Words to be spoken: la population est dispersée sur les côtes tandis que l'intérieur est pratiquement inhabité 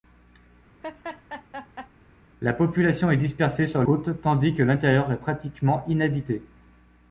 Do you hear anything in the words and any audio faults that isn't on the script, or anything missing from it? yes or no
yes